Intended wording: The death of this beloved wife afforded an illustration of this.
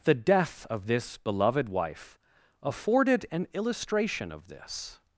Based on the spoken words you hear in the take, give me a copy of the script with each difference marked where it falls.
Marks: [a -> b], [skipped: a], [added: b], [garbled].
The death of this beloved wife afforded an illustration of this.